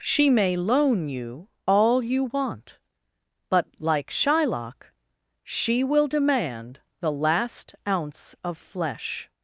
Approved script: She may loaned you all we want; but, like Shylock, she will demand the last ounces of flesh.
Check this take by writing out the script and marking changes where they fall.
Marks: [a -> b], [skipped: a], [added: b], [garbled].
She may [loaned -> loan] you all [we -> you] want; but, like Shylock, she will demand the last [ounces -> ounce] of flesh.